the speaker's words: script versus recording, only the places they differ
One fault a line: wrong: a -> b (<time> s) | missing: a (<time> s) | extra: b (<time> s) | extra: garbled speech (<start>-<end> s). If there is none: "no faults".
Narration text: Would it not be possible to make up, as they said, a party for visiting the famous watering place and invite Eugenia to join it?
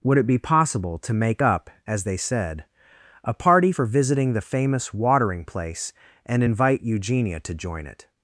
missing: not (0.2 s)